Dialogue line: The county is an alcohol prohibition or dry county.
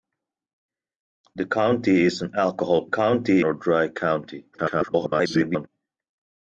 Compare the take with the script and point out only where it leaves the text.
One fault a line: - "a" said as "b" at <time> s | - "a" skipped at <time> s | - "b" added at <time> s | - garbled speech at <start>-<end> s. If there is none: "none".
- "prohibition" said as "county" at 2.8 s
- garbled speech at 4.5-5.7 s